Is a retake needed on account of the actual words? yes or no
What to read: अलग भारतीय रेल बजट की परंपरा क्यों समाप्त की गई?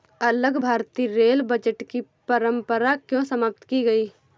no